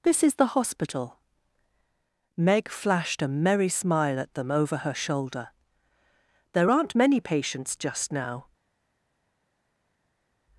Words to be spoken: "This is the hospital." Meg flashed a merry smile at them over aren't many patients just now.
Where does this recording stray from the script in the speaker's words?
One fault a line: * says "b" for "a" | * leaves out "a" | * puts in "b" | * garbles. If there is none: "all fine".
* puts in "her shoulder There"